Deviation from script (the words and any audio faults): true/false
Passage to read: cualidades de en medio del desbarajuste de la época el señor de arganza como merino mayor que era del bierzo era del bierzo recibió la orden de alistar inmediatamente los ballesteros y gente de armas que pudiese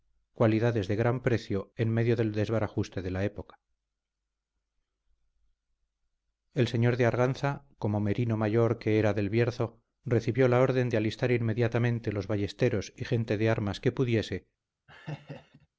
true